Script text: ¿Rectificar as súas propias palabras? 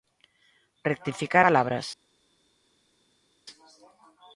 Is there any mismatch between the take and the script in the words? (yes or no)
yes